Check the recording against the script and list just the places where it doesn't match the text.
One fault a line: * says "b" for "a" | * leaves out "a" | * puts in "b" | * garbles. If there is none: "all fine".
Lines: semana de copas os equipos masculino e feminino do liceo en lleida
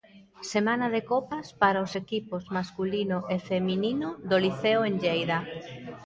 * puts in "para"